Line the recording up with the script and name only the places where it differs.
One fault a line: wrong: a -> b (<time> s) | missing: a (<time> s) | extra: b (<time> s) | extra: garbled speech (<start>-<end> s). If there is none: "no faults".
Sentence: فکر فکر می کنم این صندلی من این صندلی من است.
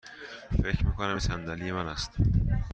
missing: فکر (0.8 s)
missing: این صندلی من (1.9 s)